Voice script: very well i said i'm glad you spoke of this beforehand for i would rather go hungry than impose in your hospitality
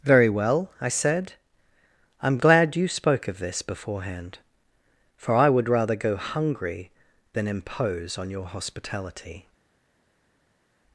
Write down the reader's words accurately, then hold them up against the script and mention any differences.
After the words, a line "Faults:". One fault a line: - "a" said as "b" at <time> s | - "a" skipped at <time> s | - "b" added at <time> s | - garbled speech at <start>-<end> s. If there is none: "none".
very well i said i'm glad you spoke of this beforehand for i would rather go hungry than impose on your hospitality
Faults:
- "in" said as "on" at 8.2 s